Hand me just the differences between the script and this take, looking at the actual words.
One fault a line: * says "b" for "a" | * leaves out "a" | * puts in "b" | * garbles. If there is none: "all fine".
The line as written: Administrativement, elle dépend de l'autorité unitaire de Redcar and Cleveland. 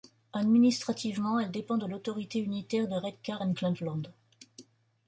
all fine